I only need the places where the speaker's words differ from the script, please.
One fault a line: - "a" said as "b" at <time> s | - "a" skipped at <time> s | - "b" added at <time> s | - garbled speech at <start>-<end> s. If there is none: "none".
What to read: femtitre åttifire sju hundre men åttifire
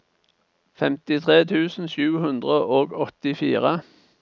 - "åttifire" said as "tusen" at 1.5 s
- "men" said as "og" at 2.8 s